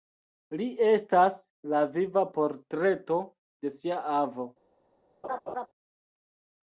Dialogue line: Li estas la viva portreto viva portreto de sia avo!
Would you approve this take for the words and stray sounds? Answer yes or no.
no